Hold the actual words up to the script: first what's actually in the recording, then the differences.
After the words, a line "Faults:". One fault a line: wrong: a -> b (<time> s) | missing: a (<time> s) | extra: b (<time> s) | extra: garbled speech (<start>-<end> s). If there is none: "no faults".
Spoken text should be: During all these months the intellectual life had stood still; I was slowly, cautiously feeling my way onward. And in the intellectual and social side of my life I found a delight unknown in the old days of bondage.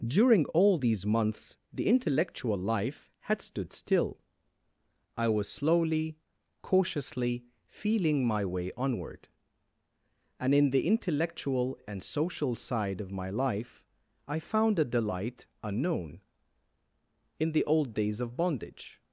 During all these months the intellectual life had stood still; I was slowly, cautiously feeling my way onward. And in the intellectual and social side of my life I found a delight unknown in the old days of bondage.
Faults:
no faults